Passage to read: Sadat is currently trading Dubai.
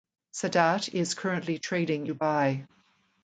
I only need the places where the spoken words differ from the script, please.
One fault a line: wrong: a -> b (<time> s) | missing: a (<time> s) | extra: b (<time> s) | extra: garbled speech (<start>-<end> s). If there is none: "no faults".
no faults